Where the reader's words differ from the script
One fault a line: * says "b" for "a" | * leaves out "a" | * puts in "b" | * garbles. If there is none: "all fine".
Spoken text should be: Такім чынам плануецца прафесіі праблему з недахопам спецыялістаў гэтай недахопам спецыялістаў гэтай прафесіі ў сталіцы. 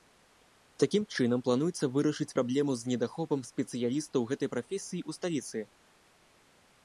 * says "вырашыць" for "прафесіі"
* leaves out "недахопам спецыялістаў гэтай"